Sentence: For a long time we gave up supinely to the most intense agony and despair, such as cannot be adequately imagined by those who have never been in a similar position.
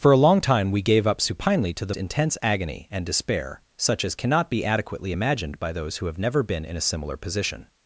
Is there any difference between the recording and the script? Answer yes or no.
yes